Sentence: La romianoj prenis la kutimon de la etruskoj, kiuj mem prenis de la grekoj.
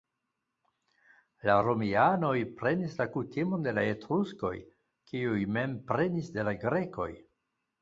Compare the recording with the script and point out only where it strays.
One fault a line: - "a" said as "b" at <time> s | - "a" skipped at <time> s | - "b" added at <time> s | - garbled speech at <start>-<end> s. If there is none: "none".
none